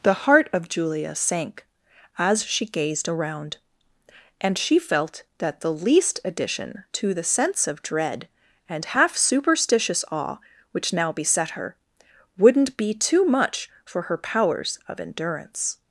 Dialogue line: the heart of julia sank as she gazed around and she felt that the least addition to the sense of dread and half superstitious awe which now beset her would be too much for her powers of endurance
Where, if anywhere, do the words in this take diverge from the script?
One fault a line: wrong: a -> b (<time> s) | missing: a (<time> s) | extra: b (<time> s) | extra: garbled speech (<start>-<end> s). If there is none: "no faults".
wrong: would -> wouldn't (12.4 s)